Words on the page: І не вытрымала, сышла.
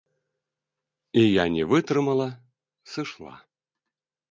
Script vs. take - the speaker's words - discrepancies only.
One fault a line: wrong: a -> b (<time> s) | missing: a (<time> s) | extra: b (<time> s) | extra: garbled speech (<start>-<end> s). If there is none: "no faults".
extra: я (1.3 s)